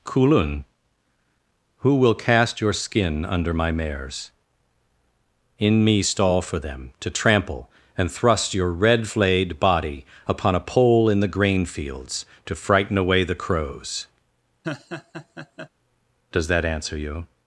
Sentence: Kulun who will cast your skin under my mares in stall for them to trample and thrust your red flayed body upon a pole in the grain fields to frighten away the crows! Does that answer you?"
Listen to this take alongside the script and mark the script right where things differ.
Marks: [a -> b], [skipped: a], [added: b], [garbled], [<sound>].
Kulun who will cast your skin under my mares in [added: me] stall for them to trample and thrust your red flayed body upon a pole in the grain fields to frighten away the crows! [laugh] Does that answer you?"